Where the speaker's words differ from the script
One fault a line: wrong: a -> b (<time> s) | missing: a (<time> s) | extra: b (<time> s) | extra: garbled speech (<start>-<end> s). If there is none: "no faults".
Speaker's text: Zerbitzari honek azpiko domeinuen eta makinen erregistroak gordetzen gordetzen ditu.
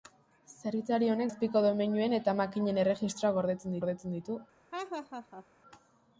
no faults